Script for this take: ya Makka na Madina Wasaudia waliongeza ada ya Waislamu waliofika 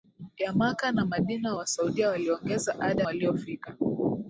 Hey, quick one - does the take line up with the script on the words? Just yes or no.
no